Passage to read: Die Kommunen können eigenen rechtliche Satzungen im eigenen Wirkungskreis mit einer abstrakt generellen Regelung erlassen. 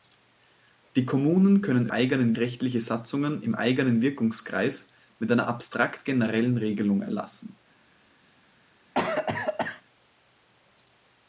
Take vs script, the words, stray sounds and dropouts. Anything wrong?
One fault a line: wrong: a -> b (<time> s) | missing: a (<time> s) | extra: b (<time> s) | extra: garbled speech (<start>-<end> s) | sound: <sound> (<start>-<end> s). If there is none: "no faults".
sound: cough (8.9-9.8 s)